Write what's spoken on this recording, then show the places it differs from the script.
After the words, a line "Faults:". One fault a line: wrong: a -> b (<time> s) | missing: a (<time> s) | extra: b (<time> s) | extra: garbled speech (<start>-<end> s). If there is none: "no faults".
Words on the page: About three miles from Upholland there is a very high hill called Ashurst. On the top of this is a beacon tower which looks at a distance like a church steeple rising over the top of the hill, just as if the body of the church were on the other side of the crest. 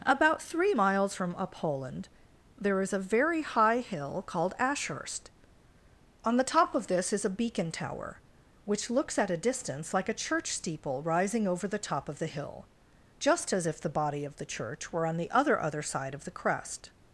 About three miles from Upholland there is a very high hill called Ashurst. On the top of this is a beacon tower which looks at a distance like a church steeple rising over the top of the hill, just as if the body of the church were on the other other side of the crest.
Faults:
extra: other (15.6 s)